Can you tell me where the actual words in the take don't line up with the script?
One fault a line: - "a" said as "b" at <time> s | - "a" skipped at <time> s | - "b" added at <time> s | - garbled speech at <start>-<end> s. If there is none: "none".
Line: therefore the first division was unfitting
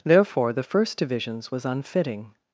- "division" said as "divisions" at 1.0 s